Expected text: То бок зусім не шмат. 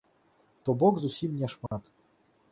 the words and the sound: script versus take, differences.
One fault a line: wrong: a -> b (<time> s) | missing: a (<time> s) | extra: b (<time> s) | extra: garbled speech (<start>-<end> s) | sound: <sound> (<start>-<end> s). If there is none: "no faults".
sound: dropout (1.7-1.7 s)